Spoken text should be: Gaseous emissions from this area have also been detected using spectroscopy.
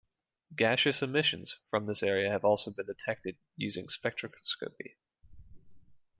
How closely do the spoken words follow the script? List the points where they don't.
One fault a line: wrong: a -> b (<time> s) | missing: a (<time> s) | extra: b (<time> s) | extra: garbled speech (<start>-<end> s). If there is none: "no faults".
no faults